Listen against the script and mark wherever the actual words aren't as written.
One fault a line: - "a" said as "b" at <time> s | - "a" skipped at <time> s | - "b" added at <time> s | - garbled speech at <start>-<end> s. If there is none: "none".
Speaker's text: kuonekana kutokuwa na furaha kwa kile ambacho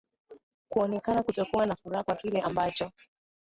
none